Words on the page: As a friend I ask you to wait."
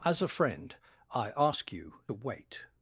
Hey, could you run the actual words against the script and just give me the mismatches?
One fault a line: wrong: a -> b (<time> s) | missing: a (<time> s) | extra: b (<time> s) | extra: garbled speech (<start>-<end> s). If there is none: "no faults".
missing: to (2.0 s)